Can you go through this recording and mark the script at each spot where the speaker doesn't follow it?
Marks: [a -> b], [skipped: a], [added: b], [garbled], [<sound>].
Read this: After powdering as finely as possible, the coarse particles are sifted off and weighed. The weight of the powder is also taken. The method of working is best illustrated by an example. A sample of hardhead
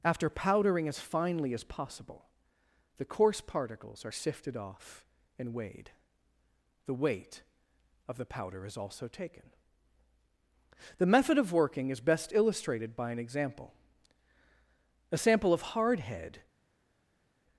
After powdering as finely as possible, the coarse particles are sifted off and weighed. The weight of the powder is also taken. The method of working is best illustrated by an example. A sample of hardhead